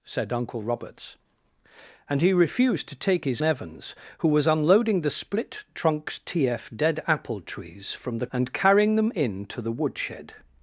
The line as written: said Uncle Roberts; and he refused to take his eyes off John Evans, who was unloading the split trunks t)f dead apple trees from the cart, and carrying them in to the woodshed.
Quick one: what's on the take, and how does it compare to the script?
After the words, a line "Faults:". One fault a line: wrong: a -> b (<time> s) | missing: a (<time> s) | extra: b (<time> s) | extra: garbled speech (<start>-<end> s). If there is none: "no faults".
said Uncle Roberts; and he refused to take his Evans, who was unloading the split trunks t)f dead apple trees from the and carrying them in to the woodshed.
Faults:
missing: eyes off John (3.4 s)
missing: cart (8.3 s)